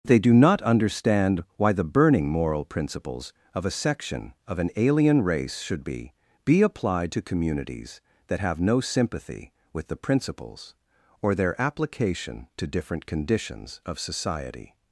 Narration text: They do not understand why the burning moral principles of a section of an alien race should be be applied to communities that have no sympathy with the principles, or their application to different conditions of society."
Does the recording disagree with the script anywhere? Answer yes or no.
no